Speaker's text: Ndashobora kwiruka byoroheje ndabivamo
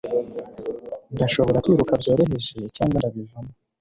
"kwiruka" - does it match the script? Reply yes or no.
yes